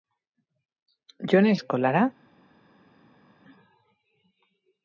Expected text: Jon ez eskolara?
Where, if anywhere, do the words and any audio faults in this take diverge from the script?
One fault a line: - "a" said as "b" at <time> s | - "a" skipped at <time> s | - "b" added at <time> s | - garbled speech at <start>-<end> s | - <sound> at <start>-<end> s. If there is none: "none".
none